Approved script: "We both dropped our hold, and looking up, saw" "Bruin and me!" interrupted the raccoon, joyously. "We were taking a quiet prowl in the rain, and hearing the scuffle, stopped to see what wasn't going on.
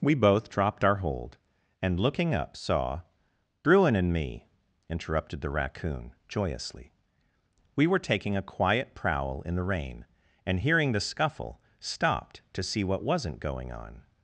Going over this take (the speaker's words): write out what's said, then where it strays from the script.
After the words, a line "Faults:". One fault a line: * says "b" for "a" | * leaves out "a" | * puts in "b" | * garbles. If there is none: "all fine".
"We both dropped our hold, and looking up, saw" "Bruin and me!" interrupted the raccoon, joyously. "We were taking a quiet prowl in the rain, and hearing the scuffle, stopped to see what wasn't going on.
Faults:
all fine